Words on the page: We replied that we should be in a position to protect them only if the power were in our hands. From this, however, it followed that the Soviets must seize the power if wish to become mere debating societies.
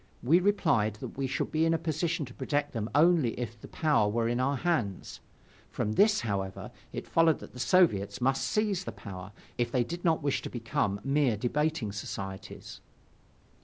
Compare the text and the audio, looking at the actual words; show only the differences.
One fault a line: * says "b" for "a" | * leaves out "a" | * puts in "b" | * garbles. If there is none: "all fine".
* puts in "they did not"